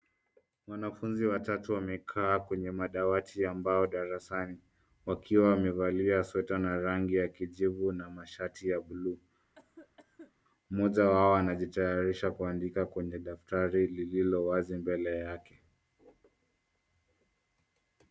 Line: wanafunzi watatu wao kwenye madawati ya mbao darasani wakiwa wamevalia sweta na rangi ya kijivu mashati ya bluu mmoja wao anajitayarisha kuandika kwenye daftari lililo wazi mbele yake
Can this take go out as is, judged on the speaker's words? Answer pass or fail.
fail